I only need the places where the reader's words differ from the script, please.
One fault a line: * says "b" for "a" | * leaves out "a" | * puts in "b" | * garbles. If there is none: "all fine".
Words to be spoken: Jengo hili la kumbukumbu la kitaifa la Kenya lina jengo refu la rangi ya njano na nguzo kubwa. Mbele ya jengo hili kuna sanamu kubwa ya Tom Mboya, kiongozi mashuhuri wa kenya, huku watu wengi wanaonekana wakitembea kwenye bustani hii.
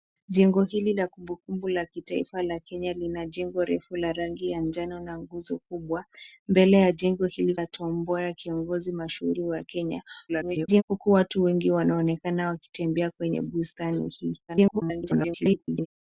* leaves out "kuna sanamu kubwa"
* garbles
* garbles